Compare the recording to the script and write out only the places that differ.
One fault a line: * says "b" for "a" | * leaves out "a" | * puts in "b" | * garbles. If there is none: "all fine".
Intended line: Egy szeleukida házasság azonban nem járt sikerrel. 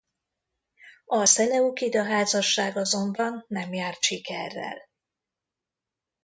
* says "A" for "Egy"